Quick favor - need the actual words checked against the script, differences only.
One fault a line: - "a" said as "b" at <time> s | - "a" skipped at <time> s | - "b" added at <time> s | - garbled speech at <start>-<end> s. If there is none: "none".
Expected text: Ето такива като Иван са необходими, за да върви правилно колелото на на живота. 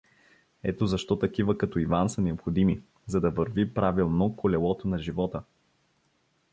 - "защо" added at 0.8 s
- "на" skipped at 5.0 s